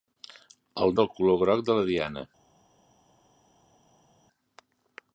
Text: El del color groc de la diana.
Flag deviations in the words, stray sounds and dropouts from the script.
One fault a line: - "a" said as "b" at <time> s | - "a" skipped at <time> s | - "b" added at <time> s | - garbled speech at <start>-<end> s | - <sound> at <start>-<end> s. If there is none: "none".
none